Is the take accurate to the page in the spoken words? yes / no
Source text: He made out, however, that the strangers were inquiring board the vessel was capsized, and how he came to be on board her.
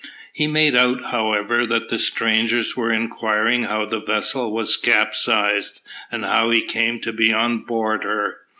no